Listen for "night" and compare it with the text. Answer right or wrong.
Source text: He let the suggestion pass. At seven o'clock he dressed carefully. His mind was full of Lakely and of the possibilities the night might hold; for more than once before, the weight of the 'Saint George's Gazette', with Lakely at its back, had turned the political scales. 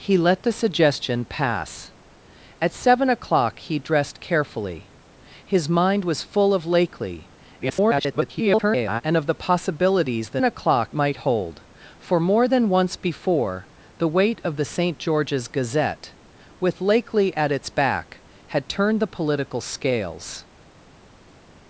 wrong